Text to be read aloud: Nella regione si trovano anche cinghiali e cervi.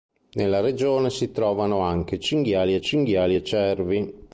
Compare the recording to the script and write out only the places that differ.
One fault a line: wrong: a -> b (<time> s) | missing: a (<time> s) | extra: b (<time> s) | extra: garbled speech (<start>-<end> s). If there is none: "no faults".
extra: cinghiali e (2.8 s)